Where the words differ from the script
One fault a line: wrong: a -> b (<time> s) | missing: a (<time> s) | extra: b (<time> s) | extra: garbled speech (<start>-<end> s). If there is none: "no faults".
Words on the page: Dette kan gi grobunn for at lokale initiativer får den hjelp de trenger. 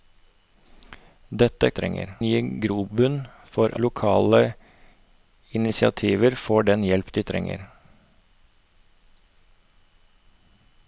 wrong: kan -> trenger (1.8 s)
missing: at (3.7 s)